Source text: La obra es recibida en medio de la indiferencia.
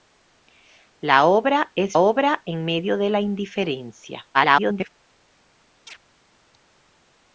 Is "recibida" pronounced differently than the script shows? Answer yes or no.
yes